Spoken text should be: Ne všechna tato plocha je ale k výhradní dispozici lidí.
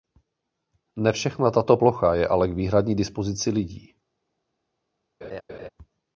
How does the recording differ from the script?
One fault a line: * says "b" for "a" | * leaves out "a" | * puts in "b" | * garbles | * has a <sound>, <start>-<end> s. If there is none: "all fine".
* has a laugh, 5.2-5.7 s